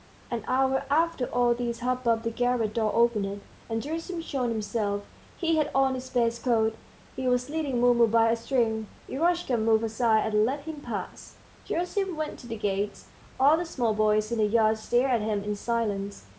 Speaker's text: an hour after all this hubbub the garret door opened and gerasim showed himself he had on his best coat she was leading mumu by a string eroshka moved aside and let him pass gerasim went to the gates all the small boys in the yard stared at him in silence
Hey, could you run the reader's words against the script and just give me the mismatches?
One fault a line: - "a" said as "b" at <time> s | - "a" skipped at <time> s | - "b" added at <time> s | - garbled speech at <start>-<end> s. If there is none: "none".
- "she" said as "he" at 7.2 s